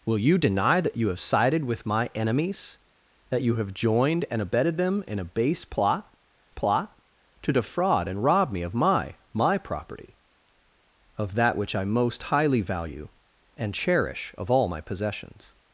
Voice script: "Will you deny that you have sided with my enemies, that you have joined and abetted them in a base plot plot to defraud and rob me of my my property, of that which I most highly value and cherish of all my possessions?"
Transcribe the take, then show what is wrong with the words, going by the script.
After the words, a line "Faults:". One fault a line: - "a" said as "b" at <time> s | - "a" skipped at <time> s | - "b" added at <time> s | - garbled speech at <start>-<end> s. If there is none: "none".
"Will you deny that you have sided with my enemies, that you have joined and abetted them in a base plot plot to defraud and rob me of my my property, of that which I most highly value and cherish of all my possessions?"
Faults:
none